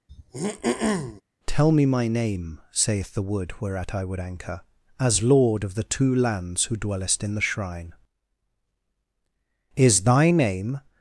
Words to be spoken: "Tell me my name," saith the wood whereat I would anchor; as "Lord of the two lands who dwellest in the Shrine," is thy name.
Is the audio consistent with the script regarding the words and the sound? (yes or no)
no